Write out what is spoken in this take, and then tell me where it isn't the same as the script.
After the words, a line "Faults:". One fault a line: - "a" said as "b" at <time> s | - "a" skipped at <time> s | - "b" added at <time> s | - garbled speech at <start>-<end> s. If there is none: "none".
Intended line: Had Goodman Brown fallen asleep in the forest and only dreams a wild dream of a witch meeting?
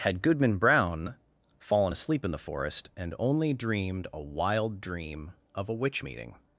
Had Goodman Brown fallen asleep in the forest and only dreamed a wild dream of a witch meeting?
Faults:
- "dreams" said as "dreamed" at 3.5 s